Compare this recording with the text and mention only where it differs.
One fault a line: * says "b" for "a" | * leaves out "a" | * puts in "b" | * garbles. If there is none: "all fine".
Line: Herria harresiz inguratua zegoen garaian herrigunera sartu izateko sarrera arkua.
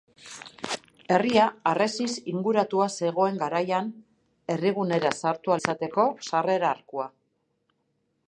all fine